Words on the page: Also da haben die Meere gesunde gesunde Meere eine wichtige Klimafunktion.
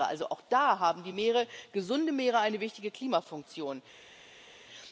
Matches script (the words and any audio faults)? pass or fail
fail